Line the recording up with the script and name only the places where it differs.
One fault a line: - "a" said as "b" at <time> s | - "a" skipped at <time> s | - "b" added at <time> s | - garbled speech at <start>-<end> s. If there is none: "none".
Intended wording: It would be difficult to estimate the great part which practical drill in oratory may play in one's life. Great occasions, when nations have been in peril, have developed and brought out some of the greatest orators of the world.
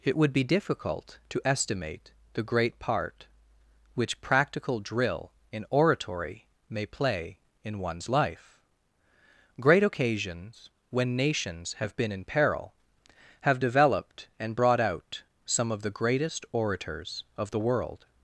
none